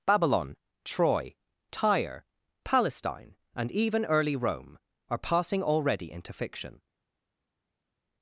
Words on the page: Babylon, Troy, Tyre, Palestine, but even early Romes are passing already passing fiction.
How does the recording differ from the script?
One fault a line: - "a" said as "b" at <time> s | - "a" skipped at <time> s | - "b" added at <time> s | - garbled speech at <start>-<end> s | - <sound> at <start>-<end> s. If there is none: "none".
- "but" said as "and" at 3.5 s
- "Romes" said as "Rome" at 4.4 s
- "passing" said as "into" at 6.1 s